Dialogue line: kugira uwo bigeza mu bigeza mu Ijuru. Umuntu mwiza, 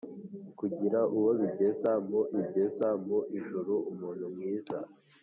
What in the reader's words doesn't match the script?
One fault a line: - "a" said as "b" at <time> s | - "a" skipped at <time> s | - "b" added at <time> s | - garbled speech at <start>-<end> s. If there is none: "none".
none